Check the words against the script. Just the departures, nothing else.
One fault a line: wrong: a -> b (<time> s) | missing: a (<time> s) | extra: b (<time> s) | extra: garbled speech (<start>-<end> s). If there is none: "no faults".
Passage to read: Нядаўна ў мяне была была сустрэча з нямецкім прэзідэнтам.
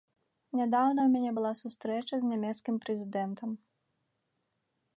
missing: была (1.5 s)